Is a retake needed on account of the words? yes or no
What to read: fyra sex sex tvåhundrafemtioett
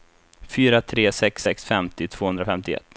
yes